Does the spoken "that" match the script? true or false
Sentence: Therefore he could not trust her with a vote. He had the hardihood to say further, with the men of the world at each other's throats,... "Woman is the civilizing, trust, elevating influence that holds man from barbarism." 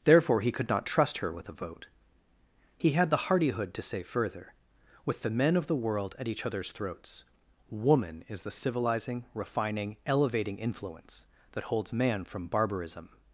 true